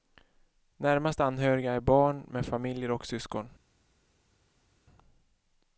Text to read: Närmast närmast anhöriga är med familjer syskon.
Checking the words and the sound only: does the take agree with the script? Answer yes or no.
no